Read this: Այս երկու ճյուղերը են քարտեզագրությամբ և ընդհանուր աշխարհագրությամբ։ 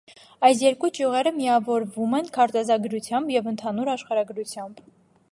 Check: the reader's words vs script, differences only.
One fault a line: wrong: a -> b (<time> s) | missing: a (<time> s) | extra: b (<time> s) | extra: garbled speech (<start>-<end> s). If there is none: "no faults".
extra: միավորվում (1.4 s)